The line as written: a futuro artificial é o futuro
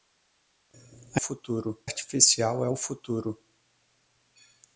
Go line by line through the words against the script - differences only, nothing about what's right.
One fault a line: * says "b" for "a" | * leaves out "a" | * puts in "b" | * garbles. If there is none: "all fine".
all fine